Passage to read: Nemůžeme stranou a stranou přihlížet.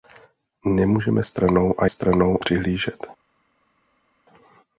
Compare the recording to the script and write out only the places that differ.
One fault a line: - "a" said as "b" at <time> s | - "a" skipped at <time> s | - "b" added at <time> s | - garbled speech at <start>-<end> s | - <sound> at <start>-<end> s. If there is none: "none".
none